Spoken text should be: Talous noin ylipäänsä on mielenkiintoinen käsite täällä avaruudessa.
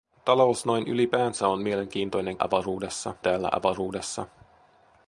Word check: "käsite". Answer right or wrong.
wrong